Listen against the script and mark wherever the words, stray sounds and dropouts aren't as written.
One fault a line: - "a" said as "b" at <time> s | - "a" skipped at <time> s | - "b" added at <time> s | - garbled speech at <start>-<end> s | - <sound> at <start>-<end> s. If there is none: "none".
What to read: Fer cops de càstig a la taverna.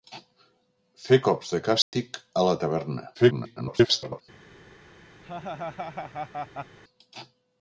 - dropout at 1.8-1.9 s
- garbled speech at 3.1-4.2 s
- laugh at 5.2-6.8 s